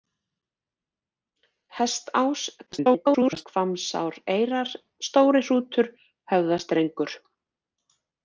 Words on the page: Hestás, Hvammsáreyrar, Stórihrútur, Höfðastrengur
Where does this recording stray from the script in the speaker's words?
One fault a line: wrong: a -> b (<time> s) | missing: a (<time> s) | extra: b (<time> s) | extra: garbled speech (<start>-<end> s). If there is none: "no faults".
extra: garbled speech (2.7-3.5 s)